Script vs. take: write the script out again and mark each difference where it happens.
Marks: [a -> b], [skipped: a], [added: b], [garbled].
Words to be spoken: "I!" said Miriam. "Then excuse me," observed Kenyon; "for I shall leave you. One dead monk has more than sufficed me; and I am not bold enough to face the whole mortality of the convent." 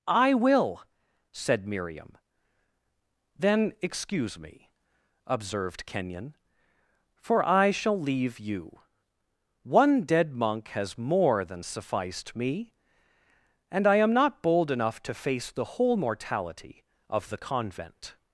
"I!" [added: will] said Miriam. "Then excuse me," observed Kenyon; "for I shall leave you. One dead monk has more than sufficed me; and I am not bold enough to face the whole mortality of the convent."